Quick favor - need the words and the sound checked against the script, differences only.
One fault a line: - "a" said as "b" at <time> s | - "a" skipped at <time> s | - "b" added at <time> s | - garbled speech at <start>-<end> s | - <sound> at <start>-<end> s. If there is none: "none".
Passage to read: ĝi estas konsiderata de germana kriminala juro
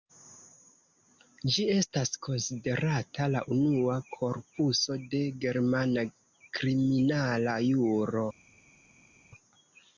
- "la unua korpuso" added at 3.3 s